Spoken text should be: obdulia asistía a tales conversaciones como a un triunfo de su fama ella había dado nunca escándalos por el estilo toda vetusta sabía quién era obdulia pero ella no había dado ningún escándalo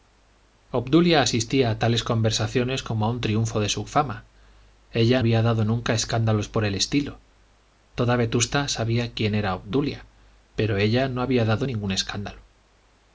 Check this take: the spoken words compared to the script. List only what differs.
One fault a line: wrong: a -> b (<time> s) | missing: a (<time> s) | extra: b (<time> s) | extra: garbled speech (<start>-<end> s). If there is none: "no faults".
no faults